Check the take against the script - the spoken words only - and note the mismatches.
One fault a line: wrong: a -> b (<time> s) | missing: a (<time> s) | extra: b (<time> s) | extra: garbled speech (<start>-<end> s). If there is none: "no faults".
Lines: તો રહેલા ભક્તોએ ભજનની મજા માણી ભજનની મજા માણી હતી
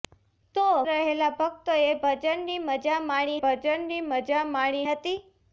no faults